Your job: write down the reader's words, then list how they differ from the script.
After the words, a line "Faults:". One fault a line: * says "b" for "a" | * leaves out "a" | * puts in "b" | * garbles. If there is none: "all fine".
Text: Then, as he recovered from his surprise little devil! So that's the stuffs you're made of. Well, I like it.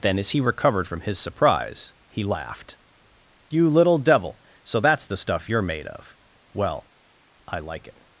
Then, as he recovered from his surprise he laughed: "You little devil! So that's the stuff you're made of. Well, I like it.
Faults:
* puts in "he laughed You"
* says "stuff" for "stuffs"